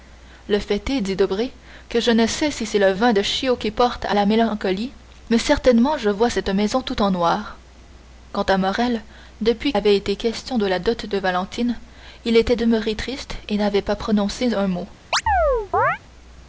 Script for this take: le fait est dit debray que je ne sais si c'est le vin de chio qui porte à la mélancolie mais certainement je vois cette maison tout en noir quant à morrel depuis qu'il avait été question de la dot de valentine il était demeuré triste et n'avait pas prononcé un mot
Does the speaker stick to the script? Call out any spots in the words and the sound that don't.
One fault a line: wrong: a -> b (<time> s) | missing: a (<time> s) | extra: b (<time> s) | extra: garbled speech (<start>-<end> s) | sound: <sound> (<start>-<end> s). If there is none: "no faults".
missing: qu'il (9.7 s)
sound: chirp (15.1-16.0 s)